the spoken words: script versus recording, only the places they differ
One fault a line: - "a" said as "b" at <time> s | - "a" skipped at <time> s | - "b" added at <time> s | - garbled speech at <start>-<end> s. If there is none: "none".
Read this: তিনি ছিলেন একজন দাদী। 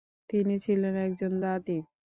none